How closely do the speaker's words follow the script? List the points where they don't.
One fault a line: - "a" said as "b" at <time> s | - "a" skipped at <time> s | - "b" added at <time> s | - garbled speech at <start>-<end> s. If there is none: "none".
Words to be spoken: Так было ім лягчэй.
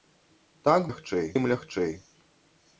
- "было" said as "лягчэй" at 0.9 s